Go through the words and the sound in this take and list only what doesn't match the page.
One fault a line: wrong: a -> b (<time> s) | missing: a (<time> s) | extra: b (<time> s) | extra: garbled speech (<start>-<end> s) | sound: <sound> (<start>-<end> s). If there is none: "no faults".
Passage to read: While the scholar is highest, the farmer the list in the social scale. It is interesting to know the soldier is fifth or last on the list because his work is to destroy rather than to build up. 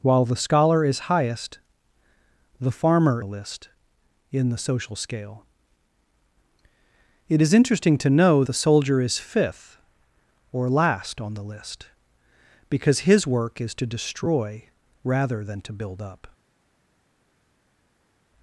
no faults